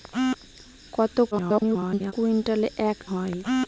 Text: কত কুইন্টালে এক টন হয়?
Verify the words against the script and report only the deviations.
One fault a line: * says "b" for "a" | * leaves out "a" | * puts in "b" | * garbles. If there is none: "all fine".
* garbles
* leaves out "টন"